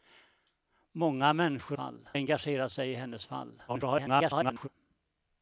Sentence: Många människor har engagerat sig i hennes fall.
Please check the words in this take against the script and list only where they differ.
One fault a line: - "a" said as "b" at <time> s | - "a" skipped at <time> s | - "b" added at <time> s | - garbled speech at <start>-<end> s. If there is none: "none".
- "har" said as "fall" at 1.7 s
- garbled speech at 3.7-4.7 s